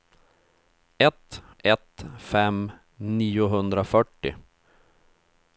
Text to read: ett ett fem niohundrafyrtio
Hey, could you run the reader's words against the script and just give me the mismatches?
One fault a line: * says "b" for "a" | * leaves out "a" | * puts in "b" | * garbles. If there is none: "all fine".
all fine